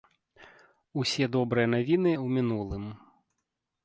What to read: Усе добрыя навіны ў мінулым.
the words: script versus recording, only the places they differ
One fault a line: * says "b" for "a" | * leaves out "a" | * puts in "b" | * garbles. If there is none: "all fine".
all fine